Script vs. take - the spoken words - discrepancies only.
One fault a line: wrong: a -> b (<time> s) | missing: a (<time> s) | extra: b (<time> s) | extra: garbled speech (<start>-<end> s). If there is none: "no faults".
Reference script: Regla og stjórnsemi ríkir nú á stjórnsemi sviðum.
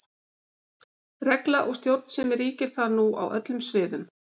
extra: þar (2.8 s)
wrong: stjórnsemi -> öllum (3.4 s)